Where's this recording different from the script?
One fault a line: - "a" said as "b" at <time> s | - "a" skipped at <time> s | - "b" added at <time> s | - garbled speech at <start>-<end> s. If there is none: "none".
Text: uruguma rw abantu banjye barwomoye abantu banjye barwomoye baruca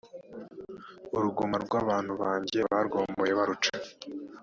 - "abantu banjye barwomoye" skipped at 3.3 s